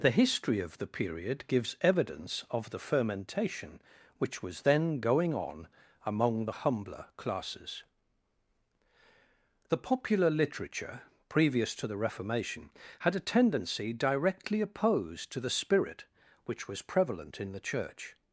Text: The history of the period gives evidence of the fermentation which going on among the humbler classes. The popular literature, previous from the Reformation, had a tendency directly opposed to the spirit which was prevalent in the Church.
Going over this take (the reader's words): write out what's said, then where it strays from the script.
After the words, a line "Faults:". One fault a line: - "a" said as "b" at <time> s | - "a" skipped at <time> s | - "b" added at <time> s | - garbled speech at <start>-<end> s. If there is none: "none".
The history of the period gives evidence of the fermentation which was then going on among the humbler classes. The popular literature, previous to the Reformation, had a tendency directly opposed to the spirit which was prevalent in the Church.
Faults:
- "was then" added at 4.4 s
- "from" said as "to" at 11.7 s